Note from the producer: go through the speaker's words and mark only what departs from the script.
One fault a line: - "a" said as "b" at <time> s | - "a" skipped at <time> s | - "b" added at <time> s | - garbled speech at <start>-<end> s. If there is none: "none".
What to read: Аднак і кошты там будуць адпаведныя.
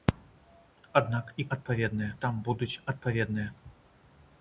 - "кошты" said as "адпаведныя" at 1.6 s